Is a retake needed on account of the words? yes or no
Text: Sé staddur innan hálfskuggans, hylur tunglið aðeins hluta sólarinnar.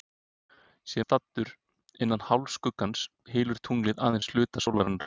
no